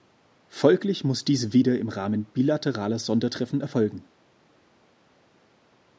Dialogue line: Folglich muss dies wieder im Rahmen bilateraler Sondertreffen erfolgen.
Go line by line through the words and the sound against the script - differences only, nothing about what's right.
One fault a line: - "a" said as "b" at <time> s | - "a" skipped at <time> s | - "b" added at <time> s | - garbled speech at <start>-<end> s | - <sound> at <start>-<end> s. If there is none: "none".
none